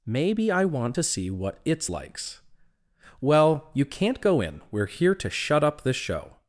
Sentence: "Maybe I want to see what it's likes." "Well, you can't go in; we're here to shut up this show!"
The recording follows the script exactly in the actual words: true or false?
true